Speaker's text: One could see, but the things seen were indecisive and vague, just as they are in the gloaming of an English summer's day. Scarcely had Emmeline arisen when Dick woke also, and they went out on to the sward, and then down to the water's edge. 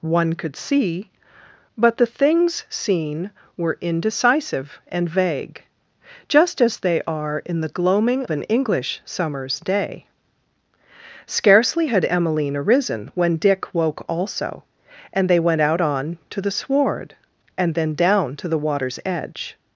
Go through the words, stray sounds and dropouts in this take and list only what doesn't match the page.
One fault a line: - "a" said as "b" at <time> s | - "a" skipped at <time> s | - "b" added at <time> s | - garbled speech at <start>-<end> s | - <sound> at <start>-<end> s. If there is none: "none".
- "of" skipped at 8.2 s